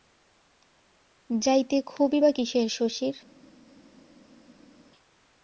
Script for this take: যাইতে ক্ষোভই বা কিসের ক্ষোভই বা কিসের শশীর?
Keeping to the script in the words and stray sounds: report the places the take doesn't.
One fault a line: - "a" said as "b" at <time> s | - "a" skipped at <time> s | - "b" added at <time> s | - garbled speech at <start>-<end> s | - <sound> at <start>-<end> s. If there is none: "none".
- "ক্ষোভই বা কিসের" skipped at 2.7 s